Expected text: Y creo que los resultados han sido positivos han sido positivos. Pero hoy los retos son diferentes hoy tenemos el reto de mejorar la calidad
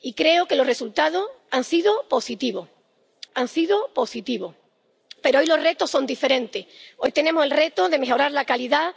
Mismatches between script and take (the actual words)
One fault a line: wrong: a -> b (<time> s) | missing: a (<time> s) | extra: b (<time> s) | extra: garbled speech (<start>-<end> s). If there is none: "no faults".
no faults